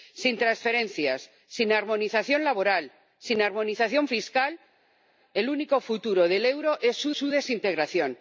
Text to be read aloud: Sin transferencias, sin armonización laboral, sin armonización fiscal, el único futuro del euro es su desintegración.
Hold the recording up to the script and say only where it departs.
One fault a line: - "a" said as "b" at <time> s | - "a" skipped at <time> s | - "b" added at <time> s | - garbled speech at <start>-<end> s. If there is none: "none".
- "su" added at 7.1 s